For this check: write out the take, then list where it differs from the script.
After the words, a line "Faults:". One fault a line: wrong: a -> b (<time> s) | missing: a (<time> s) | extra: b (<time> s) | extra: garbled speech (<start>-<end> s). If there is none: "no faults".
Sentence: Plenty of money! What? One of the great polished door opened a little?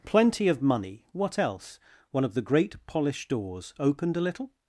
Plenty of money! What else? One of the great polished doors opened a little?
Faults:
extra: else (1.4 s)
wrong: door -> doors (3.3 s)